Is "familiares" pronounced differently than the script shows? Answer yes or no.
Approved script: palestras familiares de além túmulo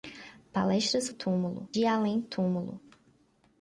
yes